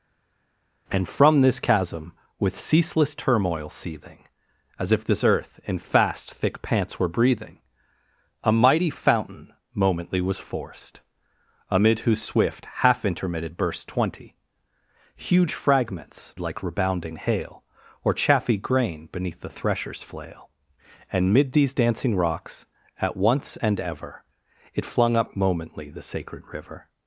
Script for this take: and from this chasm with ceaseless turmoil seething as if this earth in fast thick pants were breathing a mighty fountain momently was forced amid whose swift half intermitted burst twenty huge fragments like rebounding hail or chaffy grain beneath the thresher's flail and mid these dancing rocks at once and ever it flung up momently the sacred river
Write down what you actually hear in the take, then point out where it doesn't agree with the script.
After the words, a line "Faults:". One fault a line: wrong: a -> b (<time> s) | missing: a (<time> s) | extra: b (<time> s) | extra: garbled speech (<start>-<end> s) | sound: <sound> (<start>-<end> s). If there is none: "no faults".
and from this chasm with ceaseless turmoil seething as if this earth in fast thick pants were breathing a mighty fountain momently was forced amid whose swift half intermitted burst twenty huge fragments like rebounding hail or chaffy grain beneath the thresher's flail and mid these dancing rocks at once and ever it flung up momently the sacred river
Faults:
no faults